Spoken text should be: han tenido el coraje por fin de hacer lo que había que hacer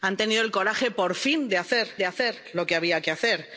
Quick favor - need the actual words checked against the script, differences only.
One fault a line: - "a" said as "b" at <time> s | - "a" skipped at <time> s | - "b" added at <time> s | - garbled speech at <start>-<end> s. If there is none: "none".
- "de hacer" added at 2.0 s